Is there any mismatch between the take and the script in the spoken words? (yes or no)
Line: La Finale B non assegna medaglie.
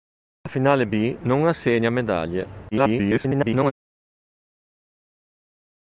yes